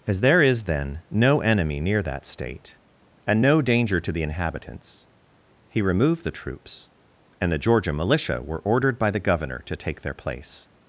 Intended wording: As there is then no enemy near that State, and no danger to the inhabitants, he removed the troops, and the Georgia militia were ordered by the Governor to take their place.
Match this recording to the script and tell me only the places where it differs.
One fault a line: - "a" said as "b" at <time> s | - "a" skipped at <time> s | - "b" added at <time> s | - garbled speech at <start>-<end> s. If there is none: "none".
none